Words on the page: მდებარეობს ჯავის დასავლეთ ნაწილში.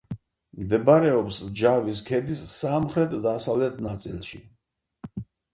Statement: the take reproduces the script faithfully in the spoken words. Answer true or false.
false